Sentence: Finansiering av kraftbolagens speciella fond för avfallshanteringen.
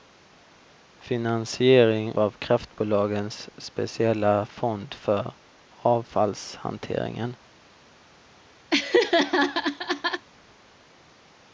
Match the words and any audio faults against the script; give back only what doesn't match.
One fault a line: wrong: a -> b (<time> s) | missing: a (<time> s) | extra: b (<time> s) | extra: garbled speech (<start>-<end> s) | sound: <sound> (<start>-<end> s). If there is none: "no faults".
sound: laugh (8.7-10.3 s)